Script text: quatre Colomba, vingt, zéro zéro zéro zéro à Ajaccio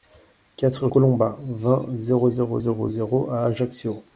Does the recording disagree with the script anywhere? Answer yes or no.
no